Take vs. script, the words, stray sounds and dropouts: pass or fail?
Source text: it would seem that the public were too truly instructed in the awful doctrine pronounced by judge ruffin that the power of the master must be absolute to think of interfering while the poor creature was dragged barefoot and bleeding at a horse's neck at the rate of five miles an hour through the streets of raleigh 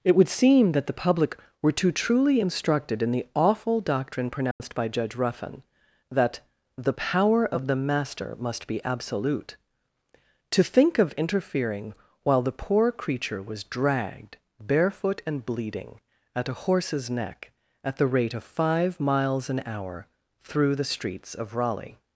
fail